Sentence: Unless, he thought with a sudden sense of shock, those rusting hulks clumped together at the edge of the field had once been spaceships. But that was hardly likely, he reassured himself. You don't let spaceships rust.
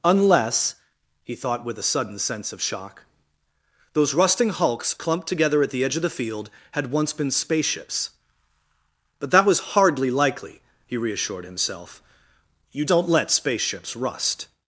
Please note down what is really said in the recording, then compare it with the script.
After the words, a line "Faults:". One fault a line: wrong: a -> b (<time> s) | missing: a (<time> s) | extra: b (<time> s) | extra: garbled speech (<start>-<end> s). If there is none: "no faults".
Unless, he thought with a sudden sense of shock, those rusting hulks clumped together at the edge of the field had once been spaceships. But that was hardly likely, he reassured himself. You don't let spaceships rust.
Faults:
no faults